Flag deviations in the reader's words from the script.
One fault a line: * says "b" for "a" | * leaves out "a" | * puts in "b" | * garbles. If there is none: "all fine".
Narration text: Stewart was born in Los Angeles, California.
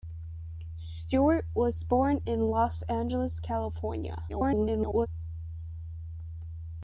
* garbles